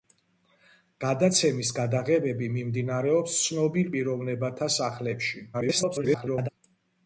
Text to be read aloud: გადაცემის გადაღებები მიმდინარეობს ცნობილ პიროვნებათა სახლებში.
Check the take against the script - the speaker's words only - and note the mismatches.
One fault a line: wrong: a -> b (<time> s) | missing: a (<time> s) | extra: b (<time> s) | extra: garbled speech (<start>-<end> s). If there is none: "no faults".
extra: garbled speech (5.5-6.5 s)